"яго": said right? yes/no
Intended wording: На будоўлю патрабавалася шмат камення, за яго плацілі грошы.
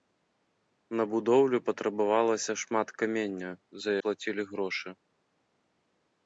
no